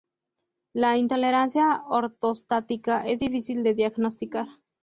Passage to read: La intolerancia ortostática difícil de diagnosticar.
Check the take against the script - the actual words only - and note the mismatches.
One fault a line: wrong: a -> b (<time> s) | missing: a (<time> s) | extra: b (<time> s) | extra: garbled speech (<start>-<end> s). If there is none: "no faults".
extra: es (3.1 s)